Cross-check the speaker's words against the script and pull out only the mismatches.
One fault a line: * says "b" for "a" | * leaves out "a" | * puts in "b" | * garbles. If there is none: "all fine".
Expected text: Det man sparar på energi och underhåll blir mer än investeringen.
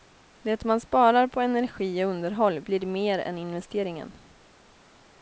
all fine